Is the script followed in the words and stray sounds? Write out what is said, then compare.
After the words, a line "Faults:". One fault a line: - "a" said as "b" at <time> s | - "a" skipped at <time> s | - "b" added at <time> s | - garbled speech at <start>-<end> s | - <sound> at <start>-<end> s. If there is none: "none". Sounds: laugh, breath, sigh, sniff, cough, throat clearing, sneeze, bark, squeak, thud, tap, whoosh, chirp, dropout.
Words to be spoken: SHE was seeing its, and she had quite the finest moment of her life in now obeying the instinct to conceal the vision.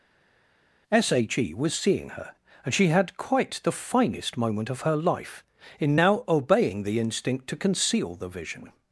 SHE was seeing her, and she had quite the finest moment of her life in now obeying the instinct to conceal the vision.
Faults:
- "its" said as "her" at 2.1 s